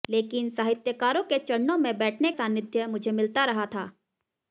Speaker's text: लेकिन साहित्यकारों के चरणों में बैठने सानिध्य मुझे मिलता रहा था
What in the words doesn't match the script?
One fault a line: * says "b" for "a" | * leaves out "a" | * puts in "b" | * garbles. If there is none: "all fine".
all fine